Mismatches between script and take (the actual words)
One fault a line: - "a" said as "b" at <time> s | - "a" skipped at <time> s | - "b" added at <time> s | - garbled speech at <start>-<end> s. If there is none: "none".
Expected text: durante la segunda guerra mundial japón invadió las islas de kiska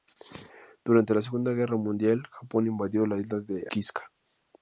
none